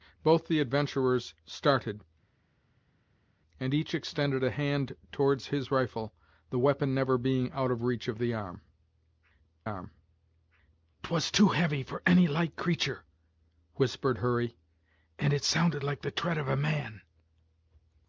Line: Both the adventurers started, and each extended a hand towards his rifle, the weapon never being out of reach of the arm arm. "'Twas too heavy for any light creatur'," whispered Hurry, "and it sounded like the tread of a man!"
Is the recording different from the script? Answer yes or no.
no